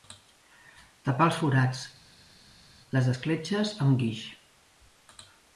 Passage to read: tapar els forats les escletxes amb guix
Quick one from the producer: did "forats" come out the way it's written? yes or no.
yes